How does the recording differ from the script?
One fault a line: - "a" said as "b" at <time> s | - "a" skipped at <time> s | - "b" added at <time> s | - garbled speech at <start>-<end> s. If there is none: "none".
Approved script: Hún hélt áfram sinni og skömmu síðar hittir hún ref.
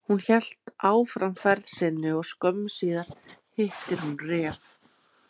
- "ferð" added at 1.4 s